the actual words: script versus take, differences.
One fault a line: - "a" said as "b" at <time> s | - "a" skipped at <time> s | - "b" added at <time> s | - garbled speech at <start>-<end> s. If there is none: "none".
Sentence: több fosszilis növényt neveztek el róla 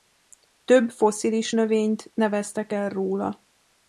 none